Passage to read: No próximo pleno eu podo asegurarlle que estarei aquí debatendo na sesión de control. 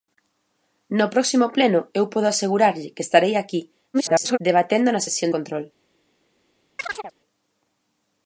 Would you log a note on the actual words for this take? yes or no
yes